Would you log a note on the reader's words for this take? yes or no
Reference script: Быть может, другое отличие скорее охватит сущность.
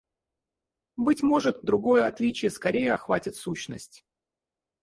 no